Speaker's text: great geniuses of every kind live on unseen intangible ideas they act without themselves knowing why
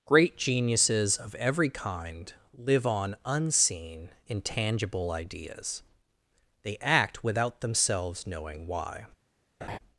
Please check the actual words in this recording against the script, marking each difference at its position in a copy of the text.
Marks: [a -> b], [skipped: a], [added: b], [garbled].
great geniuses of every kind live on unseen intangible ideas they act without themselves knowing why